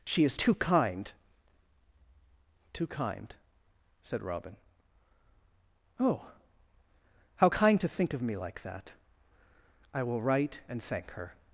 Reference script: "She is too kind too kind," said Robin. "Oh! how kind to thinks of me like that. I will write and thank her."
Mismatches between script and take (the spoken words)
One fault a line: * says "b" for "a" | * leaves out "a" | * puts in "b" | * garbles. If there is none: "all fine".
* says "think" for "thinks"